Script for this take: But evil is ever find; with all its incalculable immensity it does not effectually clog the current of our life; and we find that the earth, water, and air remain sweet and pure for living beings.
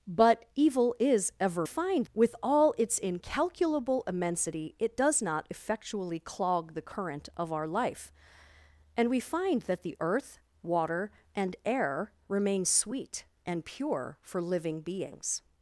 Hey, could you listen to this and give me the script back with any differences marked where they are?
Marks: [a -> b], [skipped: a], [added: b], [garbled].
But evil is ever find; with all its incalculable immensity it does not effectually clog the current of our life; and we find that the earth, water, and air remain sweet and pure for living beings.